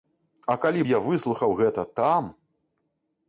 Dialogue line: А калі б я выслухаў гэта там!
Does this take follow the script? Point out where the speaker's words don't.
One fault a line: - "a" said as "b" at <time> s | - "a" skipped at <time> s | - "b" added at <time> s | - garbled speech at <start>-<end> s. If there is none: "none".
none